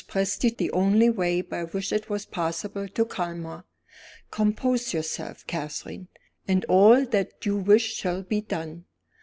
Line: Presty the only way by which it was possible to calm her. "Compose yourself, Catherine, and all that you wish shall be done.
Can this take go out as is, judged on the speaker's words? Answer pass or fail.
pass